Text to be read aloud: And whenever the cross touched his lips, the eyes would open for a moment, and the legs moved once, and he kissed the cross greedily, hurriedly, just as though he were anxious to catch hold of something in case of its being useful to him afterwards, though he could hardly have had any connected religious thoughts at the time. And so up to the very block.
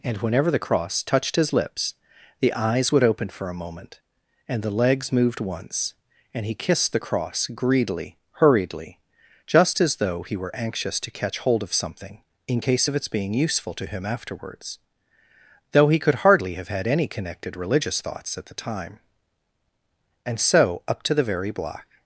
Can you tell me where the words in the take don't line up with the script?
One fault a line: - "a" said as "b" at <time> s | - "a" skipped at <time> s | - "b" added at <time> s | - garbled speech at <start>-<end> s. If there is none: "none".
none